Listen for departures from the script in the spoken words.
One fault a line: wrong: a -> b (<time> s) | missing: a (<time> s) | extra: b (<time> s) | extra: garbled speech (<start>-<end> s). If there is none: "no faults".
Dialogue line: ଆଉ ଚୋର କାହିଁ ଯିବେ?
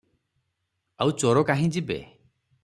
no faults